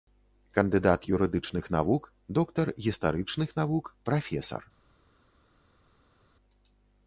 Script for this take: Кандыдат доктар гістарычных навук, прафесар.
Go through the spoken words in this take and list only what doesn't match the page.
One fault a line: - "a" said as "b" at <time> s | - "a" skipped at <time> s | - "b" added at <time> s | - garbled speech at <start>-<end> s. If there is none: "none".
- "юрыдычных навук" added at 1.1 s